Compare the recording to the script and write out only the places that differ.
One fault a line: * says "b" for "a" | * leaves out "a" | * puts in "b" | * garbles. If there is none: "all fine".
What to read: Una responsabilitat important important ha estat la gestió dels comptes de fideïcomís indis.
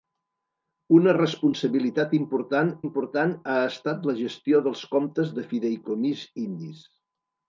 all fine